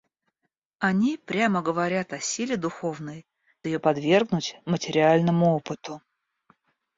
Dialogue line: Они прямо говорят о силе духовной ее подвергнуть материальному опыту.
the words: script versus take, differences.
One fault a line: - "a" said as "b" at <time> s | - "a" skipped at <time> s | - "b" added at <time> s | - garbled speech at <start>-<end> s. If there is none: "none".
none